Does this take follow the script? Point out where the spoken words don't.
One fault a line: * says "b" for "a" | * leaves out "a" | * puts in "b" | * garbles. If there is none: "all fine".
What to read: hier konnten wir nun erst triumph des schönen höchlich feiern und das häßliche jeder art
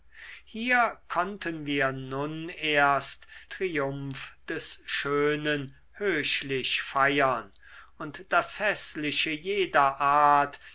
all fine